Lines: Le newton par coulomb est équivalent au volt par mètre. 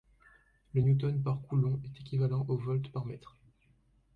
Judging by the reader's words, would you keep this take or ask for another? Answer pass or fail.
pass